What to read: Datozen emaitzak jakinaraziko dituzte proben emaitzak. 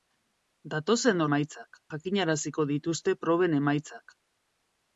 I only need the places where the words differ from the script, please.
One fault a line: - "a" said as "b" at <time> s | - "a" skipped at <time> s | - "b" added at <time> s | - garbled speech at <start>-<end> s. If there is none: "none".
none